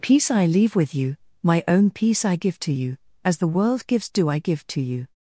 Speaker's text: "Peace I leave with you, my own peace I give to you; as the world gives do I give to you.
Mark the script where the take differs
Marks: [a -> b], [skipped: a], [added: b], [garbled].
"Peace I leave with you, my own peace I give to you; as the world gives do I give to you.